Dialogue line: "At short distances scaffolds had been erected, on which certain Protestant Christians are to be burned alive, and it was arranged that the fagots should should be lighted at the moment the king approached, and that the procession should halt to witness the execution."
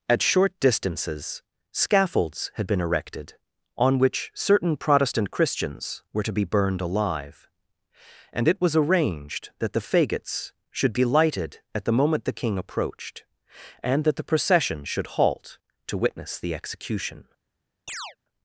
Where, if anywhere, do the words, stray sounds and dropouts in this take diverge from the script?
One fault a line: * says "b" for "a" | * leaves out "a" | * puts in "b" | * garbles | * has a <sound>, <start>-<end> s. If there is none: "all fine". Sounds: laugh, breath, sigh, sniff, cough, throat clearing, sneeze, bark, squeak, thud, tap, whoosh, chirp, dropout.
* says "were" for "are"
* leaves out "should"
* has a chirp, 17.9-18.2 s